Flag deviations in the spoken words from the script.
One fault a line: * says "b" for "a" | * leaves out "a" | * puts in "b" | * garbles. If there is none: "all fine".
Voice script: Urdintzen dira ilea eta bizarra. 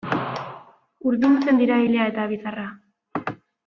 all fine